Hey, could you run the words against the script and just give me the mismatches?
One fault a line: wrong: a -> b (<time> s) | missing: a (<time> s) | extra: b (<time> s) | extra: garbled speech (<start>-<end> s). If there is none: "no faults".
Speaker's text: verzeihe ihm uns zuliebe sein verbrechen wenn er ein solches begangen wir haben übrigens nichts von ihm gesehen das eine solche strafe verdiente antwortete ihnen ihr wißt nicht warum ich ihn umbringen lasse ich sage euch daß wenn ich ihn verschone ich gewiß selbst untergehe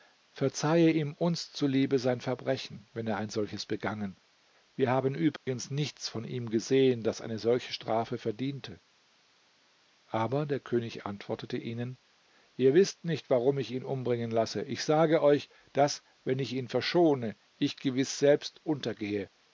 extra: aber der könig (10.1 s)